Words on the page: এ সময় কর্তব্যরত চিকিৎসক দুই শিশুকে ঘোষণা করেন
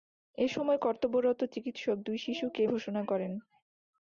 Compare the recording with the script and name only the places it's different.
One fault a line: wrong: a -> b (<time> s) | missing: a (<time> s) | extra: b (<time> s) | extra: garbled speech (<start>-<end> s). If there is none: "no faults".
no faults